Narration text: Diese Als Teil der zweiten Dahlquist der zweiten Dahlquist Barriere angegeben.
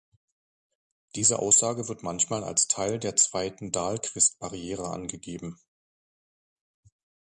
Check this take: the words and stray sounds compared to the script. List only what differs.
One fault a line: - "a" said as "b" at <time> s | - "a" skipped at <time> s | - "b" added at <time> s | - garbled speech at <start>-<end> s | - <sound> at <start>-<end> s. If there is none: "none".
- "Als Teil der zweiten Dahlquist" said as "Aussage wird manchmal als Teil" at 1.4 s